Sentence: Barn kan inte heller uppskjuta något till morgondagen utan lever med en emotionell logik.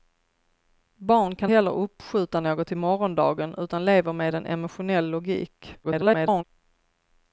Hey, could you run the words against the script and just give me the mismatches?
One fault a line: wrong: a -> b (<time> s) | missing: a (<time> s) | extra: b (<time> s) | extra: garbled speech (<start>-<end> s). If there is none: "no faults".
missing: inte (1.5 s)
extra: garbled speech (5.8-6.4 s)